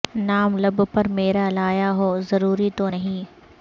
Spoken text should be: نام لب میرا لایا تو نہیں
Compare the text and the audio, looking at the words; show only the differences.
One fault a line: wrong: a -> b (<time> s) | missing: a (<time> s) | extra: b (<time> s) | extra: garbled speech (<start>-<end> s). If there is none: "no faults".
extra: پر (0.9 s)
extra: ہو ضروری (1.9 s)